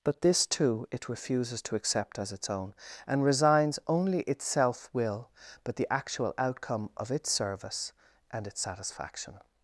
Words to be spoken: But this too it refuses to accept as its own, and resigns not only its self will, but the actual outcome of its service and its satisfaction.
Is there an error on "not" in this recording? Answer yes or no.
yes